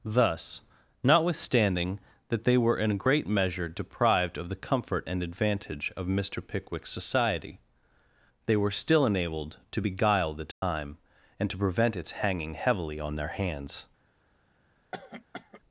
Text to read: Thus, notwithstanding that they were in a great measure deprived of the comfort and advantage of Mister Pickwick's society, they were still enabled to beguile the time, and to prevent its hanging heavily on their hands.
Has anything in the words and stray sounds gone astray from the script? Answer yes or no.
yes